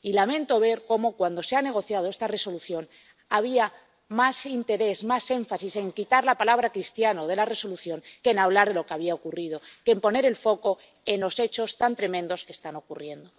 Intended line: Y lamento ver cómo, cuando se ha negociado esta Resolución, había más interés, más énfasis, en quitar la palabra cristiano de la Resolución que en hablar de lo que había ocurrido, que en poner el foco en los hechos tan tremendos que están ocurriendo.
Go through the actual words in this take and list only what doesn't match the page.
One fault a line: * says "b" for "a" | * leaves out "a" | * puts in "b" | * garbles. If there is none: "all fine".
all fine